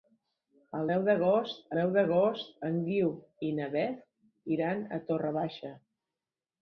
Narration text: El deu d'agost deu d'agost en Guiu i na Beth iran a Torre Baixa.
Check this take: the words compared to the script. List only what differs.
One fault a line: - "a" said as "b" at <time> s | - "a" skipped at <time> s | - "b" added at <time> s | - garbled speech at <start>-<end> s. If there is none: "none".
none